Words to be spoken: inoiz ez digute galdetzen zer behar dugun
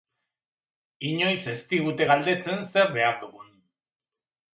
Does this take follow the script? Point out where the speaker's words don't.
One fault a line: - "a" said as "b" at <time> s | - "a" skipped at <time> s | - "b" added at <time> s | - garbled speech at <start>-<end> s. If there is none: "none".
none